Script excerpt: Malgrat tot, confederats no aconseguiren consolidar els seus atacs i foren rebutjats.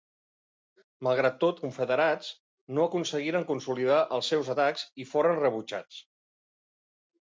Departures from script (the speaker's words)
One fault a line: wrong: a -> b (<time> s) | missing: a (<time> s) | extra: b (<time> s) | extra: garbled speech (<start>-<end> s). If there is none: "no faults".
no faults